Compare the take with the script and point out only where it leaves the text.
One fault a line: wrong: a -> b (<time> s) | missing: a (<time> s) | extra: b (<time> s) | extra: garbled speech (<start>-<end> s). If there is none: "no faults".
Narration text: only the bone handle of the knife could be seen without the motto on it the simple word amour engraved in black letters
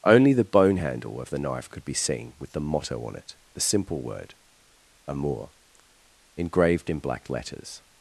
wrong: without -> with (2.4 s)